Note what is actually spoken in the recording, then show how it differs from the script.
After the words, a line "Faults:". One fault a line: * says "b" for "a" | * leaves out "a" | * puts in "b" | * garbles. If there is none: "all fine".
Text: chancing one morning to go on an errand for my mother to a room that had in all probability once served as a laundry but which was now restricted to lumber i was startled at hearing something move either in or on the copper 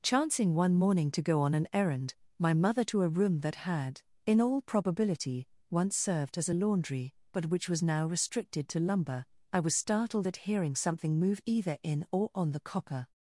chancing one morning to go on an errand my mother to a room that had in all probability once served as a laundry but which was now restricted to lumber i was startled at hearing something move either in or on the copper
Faults:
* leaves out "for"